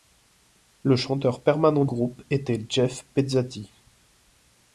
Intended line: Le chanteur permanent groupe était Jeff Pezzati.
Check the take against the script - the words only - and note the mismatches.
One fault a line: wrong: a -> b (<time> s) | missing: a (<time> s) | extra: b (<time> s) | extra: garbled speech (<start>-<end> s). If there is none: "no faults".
no faults